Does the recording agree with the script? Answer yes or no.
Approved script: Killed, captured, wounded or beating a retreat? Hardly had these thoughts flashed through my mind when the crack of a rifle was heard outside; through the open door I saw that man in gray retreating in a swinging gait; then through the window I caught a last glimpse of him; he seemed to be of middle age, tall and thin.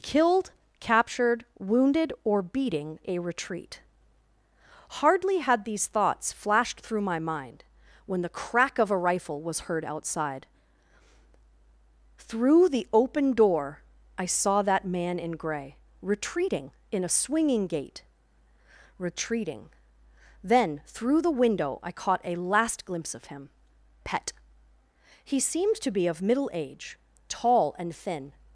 no